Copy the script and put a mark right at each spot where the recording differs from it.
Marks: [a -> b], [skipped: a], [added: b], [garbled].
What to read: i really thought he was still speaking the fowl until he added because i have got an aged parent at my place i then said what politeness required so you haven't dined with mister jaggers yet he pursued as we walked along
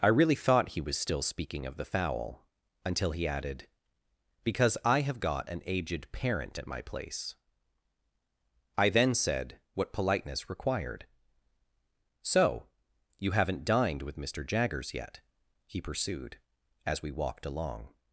i really thought he was still speaking [added: of] the fowl until he added because i have got an aged parent at my place i then said what politeness required so you haven't dined with mister jaggers yet he pursued as we walked along